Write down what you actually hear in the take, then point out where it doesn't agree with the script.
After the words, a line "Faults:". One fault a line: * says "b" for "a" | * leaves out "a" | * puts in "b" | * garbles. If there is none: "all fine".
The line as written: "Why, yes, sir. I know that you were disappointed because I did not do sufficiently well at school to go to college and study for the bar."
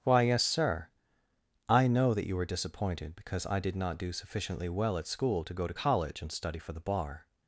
"Why, yes, sir. I know that you were disappointed because I did not do sufficiently well at school to go to college and study for the bar."
Faults:
all fine